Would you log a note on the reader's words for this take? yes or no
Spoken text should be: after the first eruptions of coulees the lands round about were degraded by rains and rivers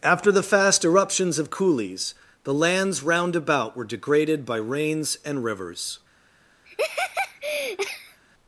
yes